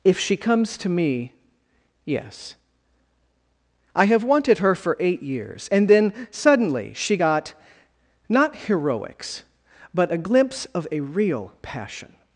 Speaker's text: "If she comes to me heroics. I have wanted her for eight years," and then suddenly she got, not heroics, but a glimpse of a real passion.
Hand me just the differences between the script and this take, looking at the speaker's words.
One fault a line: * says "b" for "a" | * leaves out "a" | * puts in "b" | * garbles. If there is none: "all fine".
* says "yes" for "heroics"